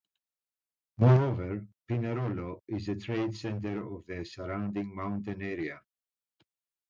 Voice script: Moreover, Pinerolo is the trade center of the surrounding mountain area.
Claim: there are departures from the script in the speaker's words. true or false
false